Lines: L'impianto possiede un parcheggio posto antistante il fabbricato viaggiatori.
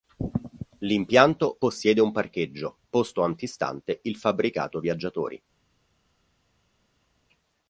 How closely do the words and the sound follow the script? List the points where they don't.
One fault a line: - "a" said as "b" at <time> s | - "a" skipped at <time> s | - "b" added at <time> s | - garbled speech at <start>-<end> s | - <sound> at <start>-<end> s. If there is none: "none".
none